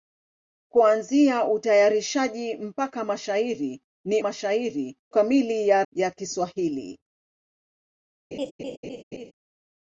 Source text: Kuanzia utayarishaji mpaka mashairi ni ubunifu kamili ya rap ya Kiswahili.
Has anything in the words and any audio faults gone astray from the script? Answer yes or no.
yes